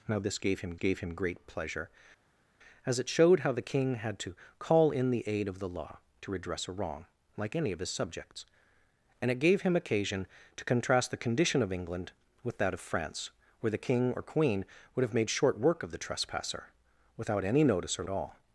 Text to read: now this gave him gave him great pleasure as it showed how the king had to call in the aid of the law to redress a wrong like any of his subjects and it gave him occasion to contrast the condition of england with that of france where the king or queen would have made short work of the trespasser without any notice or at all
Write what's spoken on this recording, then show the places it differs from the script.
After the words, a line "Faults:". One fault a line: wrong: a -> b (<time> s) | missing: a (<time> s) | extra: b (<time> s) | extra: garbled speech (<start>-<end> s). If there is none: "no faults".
now this gave him gave him great pleasure as it showed how the king had to call in the aid of the law to redress a wrong like any of his subjects and it gave him occasion to contrast the condition of england with that of france where the king or queen would have made short work of the trespasser without any notice or at all
Faults:
no faults